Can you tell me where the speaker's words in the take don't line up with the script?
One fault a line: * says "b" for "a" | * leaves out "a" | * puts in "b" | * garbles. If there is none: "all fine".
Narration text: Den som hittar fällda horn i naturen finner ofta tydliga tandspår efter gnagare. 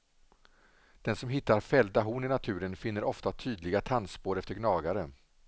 all fine